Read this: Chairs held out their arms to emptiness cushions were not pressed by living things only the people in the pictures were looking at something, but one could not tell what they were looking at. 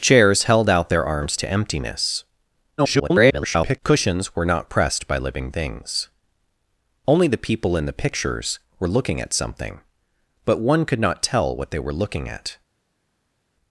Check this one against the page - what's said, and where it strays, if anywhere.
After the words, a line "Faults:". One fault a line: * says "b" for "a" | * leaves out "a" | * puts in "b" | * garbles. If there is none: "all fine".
Chairs held out their arms to emptiness [garbled] cushions were not pressed by living things only the people in the pictures were looking at something, but one could not tell what they were looking at.
Faults:
* garbles